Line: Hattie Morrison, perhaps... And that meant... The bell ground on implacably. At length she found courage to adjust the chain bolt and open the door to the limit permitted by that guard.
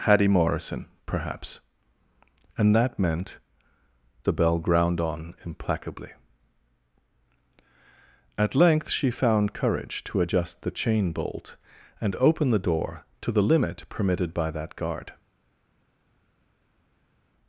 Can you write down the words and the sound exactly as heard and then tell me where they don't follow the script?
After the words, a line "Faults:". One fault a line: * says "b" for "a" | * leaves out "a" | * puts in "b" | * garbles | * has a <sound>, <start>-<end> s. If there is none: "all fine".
Hattie Morrison, perhaps... And that meant... The bell ground on implacably. At length she found courage to adjust the chain bolt and open the door to the limit permitted by that guard.
Faults:
all fine